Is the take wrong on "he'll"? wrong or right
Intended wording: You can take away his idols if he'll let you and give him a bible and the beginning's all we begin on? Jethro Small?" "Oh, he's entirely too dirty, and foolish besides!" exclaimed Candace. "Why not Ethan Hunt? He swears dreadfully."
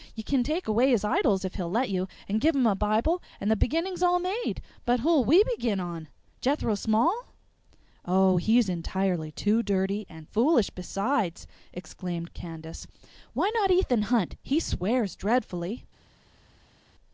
right